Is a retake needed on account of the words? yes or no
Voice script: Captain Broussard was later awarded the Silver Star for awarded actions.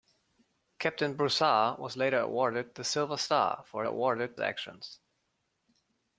no